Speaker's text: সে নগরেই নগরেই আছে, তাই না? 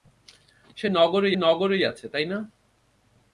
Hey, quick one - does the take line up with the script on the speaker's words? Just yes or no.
yes